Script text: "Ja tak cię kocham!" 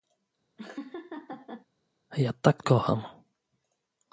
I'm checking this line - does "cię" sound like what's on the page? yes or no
no